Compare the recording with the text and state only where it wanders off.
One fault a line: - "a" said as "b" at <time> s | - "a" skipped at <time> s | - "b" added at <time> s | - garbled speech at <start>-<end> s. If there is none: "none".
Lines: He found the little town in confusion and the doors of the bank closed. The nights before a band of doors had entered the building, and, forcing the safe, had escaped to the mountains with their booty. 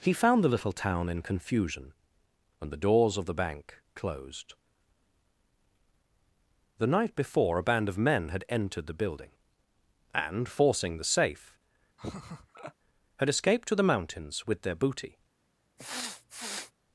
- "nights" said as "night" at 6.9 s
- "doors" said as "men" at 8.0 s